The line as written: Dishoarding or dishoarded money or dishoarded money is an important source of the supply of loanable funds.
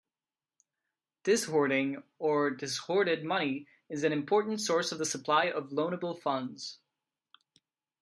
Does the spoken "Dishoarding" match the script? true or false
true